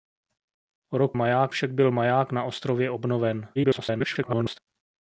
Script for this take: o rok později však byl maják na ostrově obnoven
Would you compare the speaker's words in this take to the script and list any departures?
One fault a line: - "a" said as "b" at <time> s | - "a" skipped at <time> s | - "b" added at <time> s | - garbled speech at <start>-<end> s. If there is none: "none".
- "později" said as "maják" at 1.1 s
- garbled speech at 3.6-4.6 s